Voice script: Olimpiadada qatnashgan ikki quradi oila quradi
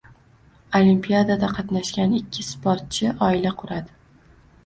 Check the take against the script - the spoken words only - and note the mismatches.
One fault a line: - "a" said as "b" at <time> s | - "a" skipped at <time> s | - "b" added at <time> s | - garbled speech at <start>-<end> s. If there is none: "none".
- "quradi" said as "sportchi" at 2.5 s